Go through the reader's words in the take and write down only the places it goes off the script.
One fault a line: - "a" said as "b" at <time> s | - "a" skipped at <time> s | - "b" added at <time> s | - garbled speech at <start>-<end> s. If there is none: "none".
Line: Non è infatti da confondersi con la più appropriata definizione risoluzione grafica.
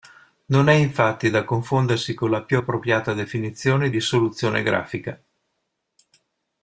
none